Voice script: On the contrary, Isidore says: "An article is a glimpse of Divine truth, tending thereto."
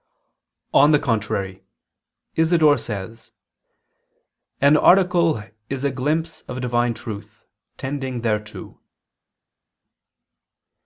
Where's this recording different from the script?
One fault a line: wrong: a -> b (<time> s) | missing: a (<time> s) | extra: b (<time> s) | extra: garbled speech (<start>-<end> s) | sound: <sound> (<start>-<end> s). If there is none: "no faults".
no faults